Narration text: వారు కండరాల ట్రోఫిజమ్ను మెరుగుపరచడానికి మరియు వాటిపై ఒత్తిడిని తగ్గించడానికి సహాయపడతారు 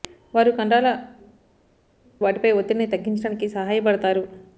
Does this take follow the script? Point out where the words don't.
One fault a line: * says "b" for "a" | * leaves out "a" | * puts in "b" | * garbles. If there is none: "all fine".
* leaves out "ట్రోఫిజమ్ను మెరుగుపరచడానికి మరియు"